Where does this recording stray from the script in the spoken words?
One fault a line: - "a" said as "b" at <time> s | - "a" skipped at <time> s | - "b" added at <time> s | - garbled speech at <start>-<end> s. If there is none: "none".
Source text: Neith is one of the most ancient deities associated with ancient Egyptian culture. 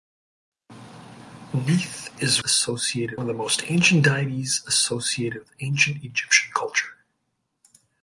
- "one" said as "associated" at 2.4 s